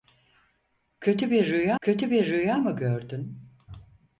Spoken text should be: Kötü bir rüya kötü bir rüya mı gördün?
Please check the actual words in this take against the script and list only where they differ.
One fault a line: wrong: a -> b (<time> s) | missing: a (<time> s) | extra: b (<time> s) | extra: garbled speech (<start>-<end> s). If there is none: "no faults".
no faults